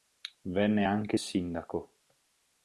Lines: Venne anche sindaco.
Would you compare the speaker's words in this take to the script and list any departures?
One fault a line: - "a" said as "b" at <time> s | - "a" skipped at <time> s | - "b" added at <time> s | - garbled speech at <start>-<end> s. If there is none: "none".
none